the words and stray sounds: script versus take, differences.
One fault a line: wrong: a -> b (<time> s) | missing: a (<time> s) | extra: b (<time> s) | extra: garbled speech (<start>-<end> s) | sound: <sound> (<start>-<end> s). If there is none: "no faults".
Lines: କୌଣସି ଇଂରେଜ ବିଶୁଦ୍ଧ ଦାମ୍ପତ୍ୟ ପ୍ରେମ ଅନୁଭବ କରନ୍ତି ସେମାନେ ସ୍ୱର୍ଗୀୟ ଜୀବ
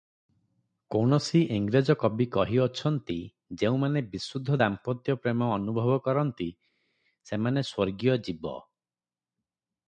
extra: କବି କହିଅଛନ୍ତି ଯେଉଁମାନେ (2.0 s)